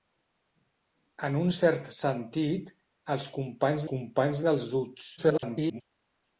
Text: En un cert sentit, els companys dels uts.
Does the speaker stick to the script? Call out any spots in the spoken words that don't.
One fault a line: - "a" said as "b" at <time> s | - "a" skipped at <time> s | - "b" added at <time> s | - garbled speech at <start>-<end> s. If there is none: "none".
- "companys" added at 3.9 s
- garbled speech at 5.2-5.8 s